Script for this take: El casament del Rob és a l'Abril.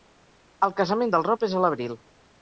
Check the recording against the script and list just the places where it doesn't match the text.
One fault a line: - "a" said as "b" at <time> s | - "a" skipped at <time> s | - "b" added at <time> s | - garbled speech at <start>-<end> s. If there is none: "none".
none